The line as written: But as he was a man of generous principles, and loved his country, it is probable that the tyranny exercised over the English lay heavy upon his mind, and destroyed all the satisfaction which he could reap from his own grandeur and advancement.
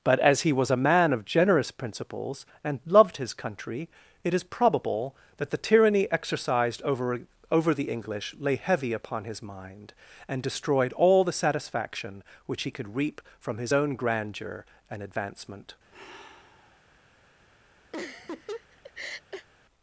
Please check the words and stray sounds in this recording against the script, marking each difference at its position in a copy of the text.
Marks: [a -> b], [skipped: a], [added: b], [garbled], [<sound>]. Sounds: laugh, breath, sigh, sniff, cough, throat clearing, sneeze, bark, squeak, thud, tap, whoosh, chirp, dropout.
But as he was a man of generous principles, and loved his country, it is probable that the tyranny exercised over [added: over] the English lay heavy upon his mind, and destroyed all the satisfaction which he could reap from his own grandeur and advancement. [sigh] [laugh]